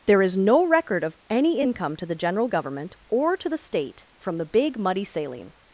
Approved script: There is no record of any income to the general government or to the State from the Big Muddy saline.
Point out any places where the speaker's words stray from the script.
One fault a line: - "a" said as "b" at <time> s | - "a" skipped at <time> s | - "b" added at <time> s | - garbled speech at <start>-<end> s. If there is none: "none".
none